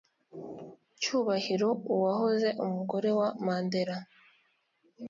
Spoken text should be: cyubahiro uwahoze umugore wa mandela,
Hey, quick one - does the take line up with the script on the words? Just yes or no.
yes